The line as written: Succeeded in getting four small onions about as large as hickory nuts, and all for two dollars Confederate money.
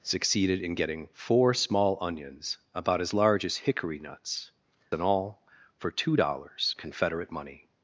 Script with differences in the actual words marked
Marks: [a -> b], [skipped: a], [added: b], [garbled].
Succeeded in getting four small onions about as large as hickory nuts, and all for two dollars Confederate money.